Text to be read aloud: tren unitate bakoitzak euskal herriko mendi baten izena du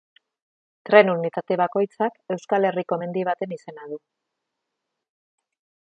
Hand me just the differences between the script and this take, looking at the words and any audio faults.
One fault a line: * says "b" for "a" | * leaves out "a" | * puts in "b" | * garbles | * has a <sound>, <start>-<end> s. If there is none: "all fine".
all fine